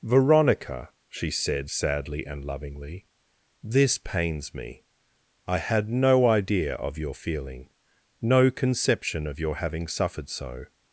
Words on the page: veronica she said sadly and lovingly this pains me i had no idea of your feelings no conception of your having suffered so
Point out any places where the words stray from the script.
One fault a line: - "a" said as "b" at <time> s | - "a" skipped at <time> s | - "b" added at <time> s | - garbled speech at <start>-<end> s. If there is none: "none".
- "feelings" said as "feeling" at 7.1 s